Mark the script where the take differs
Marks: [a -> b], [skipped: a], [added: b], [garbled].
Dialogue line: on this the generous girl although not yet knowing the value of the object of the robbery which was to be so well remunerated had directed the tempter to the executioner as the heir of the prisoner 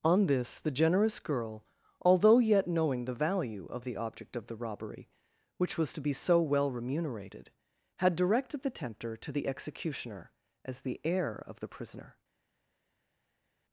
on this the generous girl although [skipped: not] yet knowing the value of the object of the robbery which was to be so well remunerated had directed the tempter to the executioner as the heir of the prisoner